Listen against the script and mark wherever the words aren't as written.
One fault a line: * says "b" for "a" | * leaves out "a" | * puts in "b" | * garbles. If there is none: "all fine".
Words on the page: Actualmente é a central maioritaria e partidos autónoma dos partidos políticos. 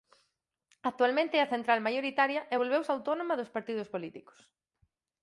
* says "volveuse" for "partidos"